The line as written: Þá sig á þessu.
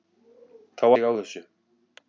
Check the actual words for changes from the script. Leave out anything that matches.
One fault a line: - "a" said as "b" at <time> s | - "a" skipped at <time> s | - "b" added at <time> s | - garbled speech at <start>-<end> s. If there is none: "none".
none